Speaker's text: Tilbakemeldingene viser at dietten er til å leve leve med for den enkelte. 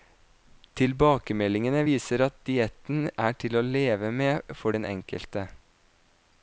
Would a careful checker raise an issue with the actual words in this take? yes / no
yes